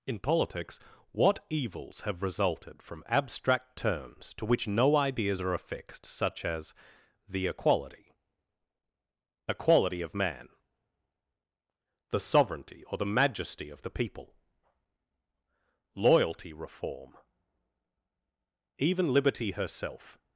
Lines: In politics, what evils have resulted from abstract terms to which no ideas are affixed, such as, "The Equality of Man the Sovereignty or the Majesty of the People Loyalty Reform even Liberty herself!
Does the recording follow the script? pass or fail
fail